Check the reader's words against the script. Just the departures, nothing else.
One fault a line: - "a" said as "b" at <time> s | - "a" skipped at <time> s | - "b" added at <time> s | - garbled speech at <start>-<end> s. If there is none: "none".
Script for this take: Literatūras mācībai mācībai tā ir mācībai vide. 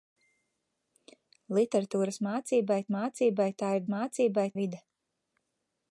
none